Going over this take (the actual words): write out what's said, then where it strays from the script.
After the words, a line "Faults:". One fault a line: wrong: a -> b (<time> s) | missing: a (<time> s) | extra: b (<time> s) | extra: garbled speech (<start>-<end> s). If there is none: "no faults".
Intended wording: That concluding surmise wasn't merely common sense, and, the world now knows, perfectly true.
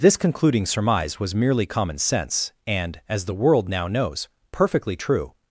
This concluding surmise was merely common sense, and, as the world now knows, perfectly true.
Faults:
wrong: That -> This (0.0 s)
wrong: wasn't -> was (1.2 s)
extra: as (3.1 s)